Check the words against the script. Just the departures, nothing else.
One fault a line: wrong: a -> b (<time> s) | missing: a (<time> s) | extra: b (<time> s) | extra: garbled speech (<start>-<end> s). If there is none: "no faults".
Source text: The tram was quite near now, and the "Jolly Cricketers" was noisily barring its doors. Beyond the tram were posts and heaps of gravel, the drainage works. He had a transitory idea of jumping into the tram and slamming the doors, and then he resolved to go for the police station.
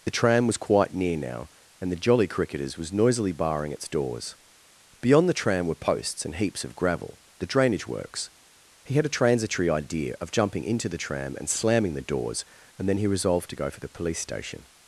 no faults